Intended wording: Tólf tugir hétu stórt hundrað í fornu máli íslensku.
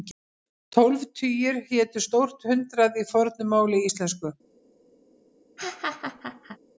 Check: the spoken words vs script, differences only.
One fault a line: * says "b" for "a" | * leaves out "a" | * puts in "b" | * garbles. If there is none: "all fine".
all fine